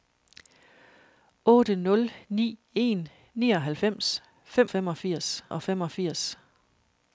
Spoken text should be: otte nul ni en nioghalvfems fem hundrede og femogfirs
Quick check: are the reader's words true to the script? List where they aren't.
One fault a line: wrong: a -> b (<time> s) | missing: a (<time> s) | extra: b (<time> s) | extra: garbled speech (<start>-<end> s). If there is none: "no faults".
wrong: hundrede -> femogfirs (4.7 s)